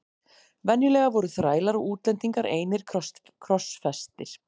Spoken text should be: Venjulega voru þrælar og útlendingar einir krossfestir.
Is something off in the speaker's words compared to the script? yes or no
no